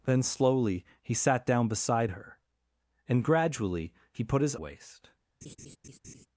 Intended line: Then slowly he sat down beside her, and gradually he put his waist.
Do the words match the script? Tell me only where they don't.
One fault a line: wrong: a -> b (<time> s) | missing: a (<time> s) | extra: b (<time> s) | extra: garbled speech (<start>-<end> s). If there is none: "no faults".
no faults